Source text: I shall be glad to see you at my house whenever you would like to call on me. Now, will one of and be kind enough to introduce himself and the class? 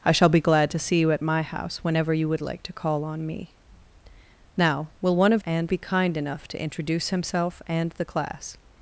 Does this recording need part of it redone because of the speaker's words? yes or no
no